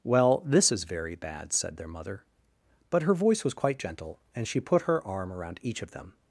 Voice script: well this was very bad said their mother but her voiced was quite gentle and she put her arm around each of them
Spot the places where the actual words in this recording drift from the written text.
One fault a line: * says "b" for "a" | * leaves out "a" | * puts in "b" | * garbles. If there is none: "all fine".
* says "is" for "was"
* says "voice" for "voiced"